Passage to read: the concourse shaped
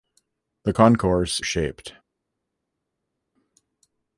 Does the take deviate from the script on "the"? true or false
false